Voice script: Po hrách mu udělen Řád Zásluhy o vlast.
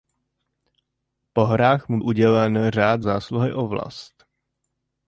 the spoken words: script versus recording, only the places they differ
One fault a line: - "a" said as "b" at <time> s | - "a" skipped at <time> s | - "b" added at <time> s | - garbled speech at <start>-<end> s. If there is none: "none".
none